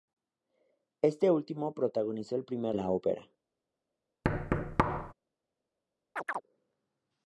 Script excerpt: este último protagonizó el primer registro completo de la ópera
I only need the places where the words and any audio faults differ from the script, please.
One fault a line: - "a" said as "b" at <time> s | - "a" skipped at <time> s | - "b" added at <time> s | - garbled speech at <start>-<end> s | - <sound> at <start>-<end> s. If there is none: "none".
- "registro completo de" skipped at 2.8 s
- thud at 4.2-5.1 s
- chirp at 6.2-6.4 s